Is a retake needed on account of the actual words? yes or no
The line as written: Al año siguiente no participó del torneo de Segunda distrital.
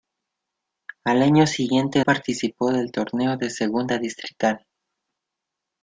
yes